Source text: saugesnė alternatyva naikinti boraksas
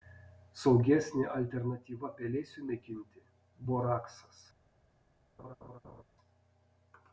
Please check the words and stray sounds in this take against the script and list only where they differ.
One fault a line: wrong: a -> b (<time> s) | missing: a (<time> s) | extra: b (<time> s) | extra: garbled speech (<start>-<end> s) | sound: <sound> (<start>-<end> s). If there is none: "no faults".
extra: pelėsiui (2.2 s)
sound: laugh (5.4-6.0 s)